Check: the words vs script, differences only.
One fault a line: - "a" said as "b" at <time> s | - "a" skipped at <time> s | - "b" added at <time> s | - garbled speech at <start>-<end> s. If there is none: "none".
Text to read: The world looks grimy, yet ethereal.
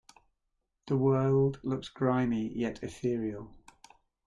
none